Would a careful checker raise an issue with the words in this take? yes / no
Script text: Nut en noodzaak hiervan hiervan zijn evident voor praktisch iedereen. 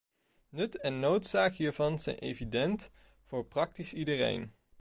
yes